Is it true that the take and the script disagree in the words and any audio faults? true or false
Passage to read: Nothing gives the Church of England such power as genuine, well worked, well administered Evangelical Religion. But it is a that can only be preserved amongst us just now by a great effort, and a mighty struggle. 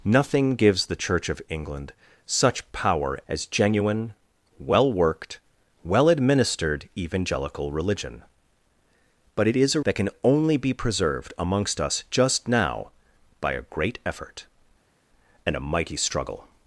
false